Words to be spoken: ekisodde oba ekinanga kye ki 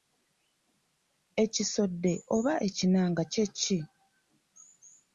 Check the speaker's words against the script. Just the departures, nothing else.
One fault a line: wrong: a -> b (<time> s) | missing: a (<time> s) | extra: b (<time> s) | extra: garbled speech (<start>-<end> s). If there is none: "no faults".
no faults